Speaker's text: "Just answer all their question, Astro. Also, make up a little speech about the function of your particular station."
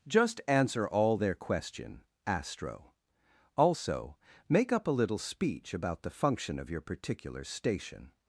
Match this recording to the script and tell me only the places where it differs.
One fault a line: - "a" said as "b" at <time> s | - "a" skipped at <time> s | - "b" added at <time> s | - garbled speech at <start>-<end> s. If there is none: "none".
none